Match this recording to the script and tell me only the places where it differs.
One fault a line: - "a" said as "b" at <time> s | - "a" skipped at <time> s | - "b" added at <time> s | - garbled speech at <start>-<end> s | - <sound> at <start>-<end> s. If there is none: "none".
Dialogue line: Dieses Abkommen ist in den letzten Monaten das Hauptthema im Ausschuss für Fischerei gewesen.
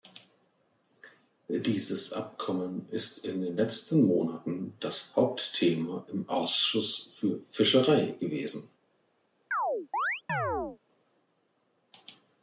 - chirp at 9.5-10.8 s